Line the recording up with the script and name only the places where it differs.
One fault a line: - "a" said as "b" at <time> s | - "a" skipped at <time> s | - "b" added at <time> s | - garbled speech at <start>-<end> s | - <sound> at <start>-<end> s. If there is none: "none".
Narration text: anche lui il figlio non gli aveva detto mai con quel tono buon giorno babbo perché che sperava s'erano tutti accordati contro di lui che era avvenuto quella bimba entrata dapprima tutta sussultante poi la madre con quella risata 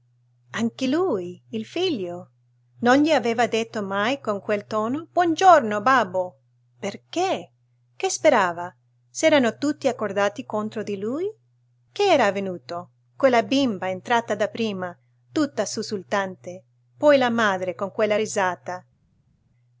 none